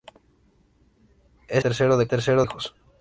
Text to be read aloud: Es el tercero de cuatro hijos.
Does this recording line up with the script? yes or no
no